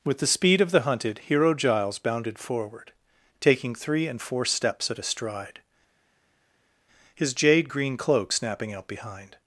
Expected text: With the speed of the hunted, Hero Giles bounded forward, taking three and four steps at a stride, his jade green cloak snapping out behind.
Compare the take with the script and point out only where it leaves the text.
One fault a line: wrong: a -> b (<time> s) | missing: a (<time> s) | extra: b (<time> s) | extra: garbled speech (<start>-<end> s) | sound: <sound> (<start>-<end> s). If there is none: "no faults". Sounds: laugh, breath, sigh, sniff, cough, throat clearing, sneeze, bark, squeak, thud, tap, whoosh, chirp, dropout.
no faults